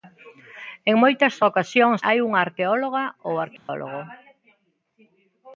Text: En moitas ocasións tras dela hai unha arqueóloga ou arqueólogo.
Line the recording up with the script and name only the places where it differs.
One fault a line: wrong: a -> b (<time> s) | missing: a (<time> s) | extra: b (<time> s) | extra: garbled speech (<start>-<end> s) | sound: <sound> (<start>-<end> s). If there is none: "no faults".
missing: tras dela (2.0 s)
sound: dropout (3.6-3.7 s)